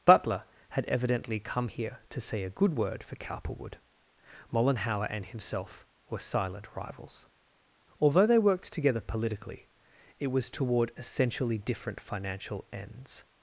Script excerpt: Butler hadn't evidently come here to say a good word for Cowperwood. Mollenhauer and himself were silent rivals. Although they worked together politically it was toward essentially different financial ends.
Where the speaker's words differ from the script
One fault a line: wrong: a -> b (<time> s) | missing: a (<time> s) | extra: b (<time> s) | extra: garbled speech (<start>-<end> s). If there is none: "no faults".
wrong: hadn't -> had (0.7 s)